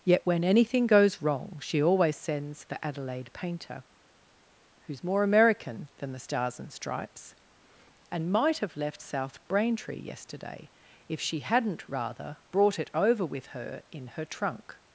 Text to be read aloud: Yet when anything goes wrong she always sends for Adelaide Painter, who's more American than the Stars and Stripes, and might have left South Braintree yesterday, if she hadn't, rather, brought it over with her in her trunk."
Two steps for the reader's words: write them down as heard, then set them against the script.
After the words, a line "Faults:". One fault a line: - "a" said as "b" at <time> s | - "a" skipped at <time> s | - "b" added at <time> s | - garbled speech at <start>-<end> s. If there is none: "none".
Yet when anything goes wrong she always sends for Adelaide Painter, who's more American than the Stars and Stripes, and might have left South Braintree yesterday, if she hadn't, rather, brought it over with her in her trunk."
Faults:
none